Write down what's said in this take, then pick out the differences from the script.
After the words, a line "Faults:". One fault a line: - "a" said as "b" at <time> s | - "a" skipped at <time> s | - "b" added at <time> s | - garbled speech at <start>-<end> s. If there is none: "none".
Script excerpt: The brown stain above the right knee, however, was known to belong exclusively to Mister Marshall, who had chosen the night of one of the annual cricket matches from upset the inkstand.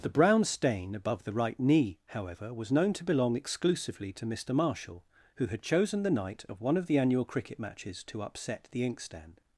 The brown stain above the right knee, however, was known to belong exclusively to Mister Marshall, who had chosen the night of one of the annual cricket matches to upset the inkstand.
Faults:
- "from" said as "to" at 8.0 s